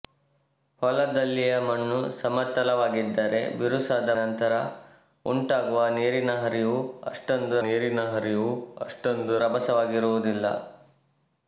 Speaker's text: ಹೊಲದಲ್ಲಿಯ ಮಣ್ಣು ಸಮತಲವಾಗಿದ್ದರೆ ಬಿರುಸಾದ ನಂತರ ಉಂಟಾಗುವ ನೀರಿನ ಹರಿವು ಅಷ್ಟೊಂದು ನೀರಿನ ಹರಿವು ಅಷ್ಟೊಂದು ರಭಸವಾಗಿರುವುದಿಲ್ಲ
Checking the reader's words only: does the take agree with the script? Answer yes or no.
yes